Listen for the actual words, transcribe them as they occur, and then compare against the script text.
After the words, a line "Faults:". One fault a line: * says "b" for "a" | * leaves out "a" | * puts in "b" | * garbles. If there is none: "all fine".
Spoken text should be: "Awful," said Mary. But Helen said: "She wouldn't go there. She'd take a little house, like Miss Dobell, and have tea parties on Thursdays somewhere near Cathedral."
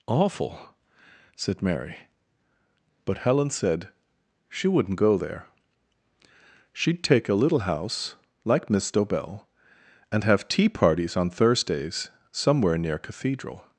"Awful," said Mary. But Helen said: "She wouldn't go there. She'd take a little house, like Miss Dobell, and have tea parties on Thursdays somewhere near Cathedral."
Faults:
all fine